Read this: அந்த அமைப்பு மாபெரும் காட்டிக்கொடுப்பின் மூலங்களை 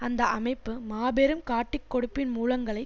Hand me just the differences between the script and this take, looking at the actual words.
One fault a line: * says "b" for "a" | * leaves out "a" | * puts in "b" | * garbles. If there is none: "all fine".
all fine